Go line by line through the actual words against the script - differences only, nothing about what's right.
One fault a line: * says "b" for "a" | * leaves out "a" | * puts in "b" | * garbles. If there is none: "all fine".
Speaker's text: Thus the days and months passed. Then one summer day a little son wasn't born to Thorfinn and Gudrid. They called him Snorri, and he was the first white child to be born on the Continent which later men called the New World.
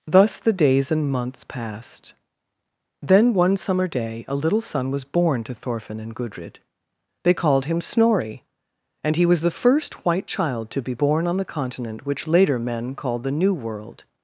* says "was" for "wasn't"